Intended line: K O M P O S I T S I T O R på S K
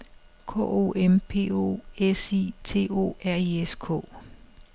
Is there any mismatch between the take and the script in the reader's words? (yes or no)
yes